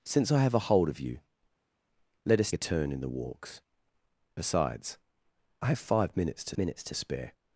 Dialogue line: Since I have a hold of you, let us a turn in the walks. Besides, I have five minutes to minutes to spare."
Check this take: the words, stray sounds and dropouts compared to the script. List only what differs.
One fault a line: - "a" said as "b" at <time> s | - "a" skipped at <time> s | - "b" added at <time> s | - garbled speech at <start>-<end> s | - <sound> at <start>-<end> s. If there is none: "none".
none